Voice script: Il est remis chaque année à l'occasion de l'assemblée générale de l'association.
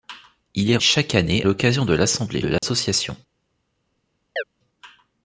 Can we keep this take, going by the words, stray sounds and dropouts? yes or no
no